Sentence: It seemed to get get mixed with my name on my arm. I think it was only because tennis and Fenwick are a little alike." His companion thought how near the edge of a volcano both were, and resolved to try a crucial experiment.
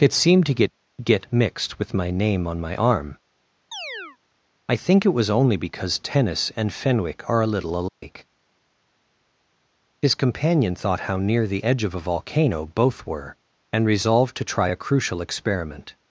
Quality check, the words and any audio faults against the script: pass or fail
fail